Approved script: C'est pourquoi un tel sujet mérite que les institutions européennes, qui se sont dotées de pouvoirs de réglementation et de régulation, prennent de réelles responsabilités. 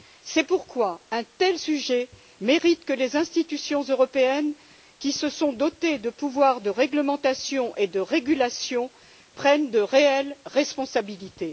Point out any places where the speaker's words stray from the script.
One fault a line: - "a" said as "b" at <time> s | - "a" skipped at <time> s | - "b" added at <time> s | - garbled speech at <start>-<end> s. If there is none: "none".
none